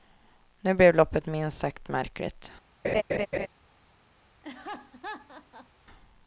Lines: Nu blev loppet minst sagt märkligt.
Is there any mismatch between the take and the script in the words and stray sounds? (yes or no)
yes